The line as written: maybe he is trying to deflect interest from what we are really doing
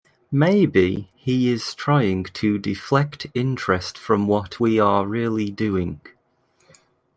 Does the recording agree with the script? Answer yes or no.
yes